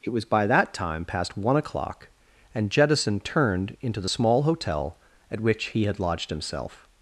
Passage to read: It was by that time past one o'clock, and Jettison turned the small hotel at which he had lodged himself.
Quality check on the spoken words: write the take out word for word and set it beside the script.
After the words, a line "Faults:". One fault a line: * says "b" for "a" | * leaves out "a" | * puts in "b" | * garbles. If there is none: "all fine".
It was by that time past one o'clock, and Jettison turned into the small hotel at which he had lodged himself.
Faults:
* puts in "into"